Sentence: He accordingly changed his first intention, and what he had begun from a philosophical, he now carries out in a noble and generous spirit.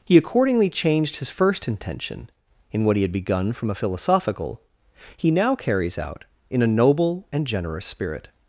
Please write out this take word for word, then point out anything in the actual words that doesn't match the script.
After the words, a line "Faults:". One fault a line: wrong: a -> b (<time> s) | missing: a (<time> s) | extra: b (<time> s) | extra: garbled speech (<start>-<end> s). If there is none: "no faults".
He accordingly changed his first intention, in what he had begun from a philosophical, he now carries out in a noble and generous spirit.
Faults:
wrong: and -> in (2.7 s)